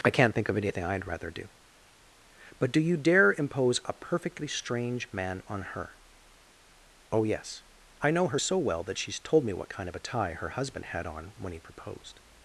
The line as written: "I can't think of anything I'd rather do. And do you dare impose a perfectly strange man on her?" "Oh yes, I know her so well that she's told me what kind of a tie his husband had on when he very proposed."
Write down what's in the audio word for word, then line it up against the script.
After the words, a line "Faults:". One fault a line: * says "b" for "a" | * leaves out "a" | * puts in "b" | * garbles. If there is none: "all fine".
"I can't think of anything I'd rather do. But do you dare impose a perfectly strange man on her?" "Oh yes, I know her so well that she's told me what kind of a tie her husband had on when he proposed."
Faults:
* says "But" for "And"
* says "her" for "his"
* leaves out "very"